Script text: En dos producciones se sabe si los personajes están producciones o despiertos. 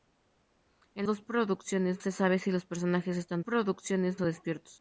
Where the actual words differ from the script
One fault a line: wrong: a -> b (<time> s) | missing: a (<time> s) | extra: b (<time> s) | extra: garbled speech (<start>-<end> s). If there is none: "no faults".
no faults